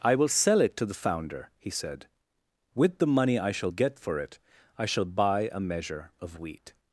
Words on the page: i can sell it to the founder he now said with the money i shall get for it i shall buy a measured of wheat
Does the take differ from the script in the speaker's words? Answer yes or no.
yes